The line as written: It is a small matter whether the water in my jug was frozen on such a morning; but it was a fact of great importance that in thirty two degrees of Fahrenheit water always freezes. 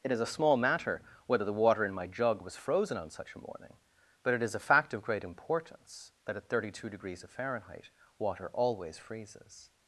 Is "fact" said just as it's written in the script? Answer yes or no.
yes